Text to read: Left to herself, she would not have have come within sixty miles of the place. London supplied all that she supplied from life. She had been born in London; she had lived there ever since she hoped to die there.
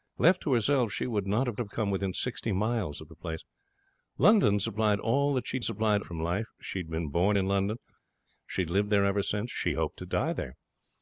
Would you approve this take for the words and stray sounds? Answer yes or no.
yes